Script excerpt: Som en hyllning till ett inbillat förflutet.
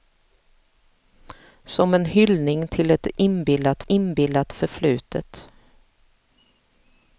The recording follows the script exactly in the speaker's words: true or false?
false